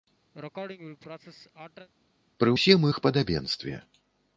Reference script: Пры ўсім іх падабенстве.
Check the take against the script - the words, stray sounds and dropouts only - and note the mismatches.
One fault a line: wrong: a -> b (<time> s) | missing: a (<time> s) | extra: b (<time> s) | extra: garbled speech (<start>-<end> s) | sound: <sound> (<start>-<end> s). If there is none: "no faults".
sound: sneeze (0.3-1.9 s)